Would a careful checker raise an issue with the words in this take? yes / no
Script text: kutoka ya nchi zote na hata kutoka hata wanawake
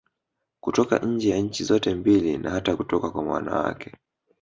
yes